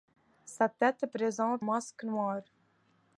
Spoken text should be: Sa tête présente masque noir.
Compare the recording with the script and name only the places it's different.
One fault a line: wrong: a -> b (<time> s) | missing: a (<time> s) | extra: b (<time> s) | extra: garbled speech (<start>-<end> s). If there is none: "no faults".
no faults